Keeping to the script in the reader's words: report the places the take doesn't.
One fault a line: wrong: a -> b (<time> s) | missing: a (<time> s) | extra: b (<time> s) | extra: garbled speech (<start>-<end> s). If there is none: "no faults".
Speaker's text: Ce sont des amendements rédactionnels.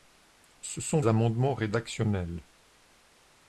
missing: des (1.0 s)